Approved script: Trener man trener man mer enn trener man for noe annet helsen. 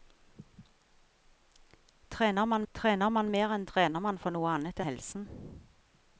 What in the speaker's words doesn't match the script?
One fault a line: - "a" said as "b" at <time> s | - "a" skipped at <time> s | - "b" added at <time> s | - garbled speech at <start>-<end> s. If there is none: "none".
none